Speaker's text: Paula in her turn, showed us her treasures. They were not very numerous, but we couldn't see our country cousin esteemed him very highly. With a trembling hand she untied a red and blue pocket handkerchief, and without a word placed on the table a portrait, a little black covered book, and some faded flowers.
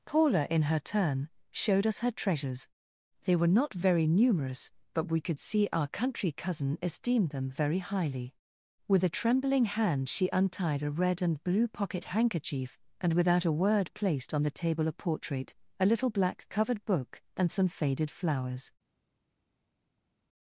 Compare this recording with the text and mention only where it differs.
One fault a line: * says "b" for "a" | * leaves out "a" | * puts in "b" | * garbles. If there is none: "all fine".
* says "could" for "couldn't"
* says "them" for "him"